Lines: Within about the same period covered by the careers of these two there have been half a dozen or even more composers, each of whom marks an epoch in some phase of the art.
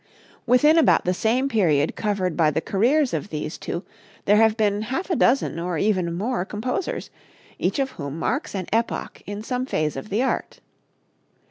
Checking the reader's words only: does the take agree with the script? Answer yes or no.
yes